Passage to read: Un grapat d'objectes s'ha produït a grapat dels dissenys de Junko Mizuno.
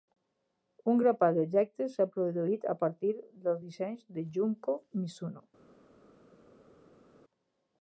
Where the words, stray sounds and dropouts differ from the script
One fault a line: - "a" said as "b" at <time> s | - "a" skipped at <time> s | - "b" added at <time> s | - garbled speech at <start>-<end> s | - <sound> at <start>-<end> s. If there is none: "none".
- "grapat" said as "partir" at 2.8 s